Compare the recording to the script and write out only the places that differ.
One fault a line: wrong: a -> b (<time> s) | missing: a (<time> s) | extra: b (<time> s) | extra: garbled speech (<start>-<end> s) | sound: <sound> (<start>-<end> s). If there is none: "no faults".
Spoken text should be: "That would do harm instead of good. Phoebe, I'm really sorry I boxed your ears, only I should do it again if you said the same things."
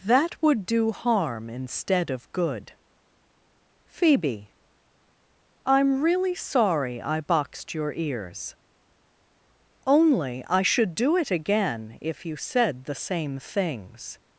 no faults